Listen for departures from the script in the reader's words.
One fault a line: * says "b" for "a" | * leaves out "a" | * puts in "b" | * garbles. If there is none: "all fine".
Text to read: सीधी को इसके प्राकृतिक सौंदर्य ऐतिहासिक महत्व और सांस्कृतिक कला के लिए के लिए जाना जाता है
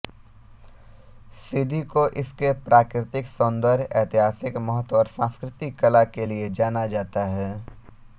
* leaves out "के लिए"